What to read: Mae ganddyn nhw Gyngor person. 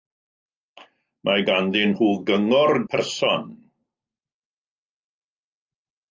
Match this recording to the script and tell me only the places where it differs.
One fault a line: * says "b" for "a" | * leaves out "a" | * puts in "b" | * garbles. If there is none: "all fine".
all fine